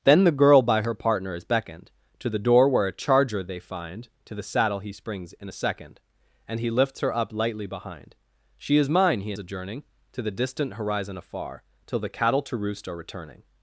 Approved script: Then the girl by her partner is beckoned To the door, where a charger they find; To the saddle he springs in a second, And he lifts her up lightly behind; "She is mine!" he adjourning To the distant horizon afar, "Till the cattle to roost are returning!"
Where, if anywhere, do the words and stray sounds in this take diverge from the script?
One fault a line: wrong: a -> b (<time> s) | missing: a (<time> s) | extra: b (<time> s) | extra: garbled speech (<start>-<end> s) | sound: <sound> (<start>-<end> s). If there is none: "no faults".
no faults